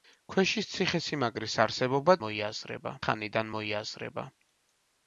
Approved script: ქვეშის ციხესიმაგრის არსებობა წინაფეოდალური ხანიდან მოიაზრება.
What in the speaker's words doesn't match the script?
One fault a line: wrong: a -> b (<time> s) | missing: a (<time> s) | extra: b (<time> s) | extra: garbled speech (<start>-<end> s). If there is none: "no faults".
wrong: წინაფეოდალური -> მოიაზრება (2.2 s)